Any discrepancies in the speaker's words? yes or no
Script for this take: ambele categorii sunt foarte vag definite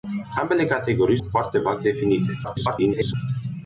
yes